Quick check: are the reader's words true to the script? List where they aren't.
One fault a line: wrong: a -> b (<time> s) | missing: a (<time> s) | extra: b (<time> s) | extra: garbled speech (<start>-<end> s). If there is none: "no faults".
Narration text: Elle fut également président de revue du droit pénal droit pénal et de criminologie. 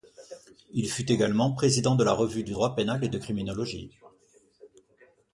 wrong: Elle -> Il (0.7 s)
extra: la (2.0 s)
missing: droit pénal (3.0 s)